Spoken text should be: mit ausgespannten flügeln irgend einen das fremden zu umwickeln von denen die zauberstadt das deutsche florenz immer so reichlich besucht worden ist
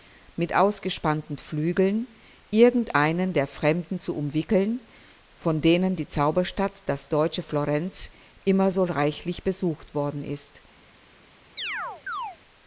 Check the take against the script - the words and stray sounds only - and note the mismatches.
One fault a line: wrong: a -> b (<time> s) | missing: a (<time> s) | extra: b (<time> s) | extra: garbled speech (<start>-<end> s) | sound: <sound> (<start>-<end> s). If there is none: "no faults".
wrong: das -> der (3.3 s)
sound: chirp (11.6-12.4 s)